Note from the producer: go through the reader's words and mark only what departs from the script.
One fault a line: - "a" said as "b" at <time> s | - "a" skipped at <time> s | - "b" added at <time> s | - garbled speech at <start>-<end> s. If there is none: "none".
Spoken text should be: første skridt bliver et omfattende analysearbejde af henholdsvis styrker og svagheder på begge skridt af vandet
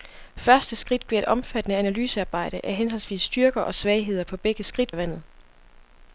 none